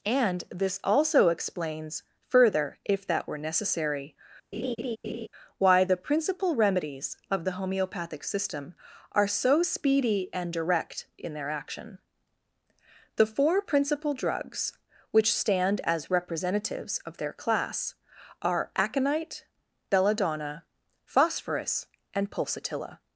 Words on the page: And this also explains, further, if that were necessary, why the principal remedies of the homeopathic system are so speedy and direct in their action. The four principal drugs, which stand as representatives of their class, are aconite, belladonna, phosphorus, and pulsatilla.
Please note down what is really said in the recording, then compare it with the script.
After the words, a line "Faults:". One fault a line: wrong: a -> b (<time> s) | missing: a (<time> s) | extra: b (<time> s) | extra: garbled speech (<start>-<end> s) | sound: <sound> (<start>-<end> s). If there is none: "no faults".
And this also explains, further, if that were necessary, why the principal remedies of the homeopathic system are so speedy and direct in their action. The four principal drugs, which stand as representatives of their class, are aconite, belladonna, phosphorus, and pulsatilla.
Faults:
sound: laugh (4.5-5.3 s)